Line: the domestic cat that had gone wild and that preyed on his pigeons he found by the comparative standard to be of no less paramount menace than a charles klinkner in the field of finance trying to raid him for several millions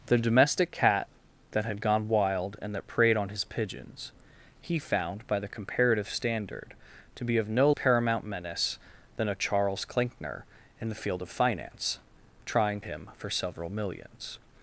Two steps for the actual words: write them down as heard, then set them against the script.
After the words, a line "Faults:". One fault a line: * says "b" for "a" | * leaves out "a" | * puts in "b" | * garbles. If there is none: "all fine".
the domestic cat that had gone wild and that preyed on his pigeons he found by the comparative standard to be of no paramount menace than a charles klinkner in the field of finance trying him for several millions
Faults:
* leaves out "less"
* leaves out "to raid"